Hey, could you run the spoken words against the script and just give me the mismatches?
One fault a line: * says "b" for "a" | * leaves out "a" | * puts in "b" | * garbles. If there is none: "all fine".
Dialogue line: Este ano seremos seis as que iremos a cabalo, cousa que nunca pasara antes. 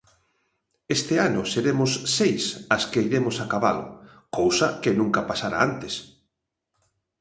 all fine